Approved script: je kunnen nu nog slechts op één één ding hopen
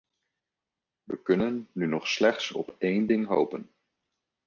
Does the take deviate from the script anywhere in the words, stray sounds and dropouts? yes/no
yes